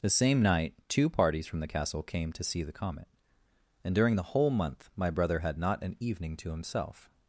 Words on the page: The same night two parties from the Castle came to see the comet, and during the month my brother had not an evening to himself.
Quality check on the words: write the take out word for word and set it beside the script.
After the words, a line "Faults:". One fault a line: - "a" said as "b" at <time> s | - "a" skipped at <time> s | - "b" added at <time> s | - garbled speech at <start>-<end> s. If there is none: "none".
The same night two parties from the Castle came to see the comet, and during the whole month my brother had not an evening to himself.
Faults:
- "whole" added at 4.2 s